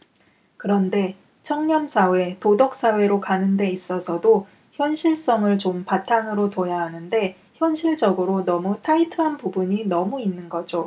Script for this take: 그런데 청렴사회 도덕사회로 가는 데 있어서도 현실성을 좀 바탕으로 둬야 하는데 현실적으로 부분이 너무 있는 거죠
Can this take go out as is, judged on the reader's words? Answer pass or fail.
fail